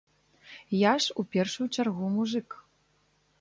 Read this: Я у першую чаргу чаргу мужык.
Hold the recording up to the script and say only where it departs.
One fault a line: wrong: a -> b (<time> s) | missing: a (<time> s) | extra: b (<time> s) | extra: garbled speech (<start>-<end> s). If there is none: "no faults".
extra: ж (1.0 s)
missing: чаргу (2.1 s)